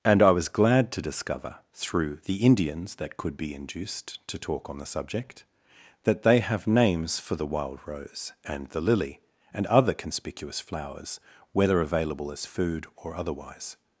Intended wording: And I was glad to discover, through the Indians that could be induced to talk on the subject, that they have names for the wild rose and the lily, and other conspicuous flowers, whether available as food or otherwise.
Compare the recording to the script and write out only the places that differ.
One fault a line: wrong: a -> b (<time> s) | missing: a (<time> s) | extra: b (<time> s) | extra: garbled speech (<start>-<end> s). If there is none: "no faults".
no faults